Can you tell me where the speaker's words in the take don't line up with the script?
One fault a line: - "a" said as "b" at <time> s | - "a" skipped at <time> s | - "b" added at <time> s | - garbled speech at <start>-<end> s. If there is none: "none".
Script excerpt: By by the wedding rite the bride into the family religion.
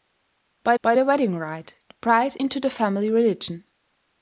none